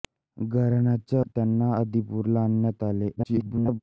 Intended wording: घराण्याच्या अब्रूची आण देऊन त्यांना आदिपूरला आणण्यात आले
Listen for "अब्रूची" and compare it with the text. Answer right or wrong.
wrong